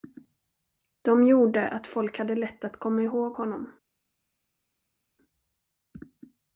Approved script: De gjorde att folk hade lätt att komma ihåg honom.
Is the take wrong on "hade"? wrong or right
right